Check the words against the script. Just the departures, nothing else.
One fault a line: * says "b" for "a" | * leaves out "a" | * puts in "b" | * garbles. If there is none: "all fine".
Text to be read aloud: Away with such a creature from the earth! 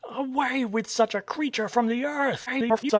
* garbles